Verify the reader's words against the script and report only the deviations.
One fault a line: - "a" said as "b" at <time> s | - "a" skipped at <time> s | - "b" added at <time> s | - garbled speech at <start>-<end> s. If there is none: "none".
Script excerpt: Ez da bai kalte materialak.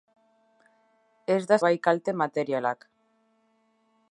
none